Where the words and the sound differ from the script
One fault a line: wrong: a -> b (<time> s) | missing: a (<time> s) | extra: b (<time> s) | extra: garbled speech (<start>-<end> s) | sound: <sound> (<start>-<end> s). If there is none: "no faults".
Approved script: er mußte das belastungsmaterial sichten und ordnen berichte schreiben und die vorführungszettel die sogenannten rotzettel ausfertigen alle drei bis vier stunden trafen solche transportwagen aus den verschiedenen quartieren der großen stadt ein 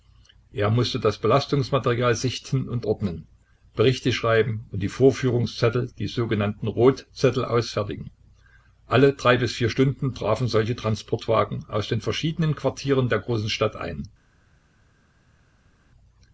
no faults